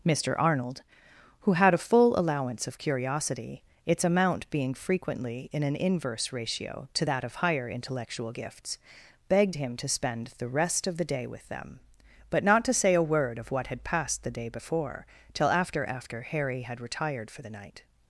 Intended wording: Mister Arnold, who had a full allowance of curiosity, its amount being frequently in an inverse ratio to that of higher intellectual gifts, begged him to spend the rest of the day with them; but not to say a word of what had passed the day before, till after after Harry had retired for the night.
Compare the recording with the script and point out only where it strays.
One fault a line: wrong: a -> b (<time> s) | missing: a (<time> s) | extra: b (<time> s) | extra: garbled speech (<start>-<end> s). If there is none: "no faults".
no faults